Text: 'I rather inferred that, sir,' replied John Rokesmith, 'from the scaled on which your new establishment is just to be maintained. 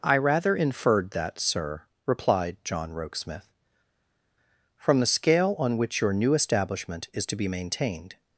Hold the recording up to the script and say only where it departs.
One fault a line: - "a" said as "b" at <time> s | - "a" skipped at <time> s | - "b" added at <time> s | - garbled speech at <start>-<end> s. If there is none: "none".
- "scaled" said as "scale" at 5.1 s
- "just" skipped at 7.3 s